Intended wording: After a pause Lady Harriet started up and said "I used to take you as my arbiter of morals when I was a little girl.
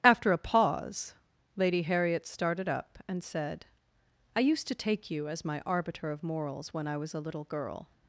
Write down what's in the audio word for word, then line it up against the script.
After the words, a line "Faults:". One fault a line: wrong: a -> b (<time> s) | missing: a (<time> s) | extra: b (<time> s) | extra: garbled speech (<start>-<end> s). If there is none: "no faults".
After a pause Lady Harriet started up and said "I used to take you as my arbiter of morals when I was a little girl.
Faults:
no faults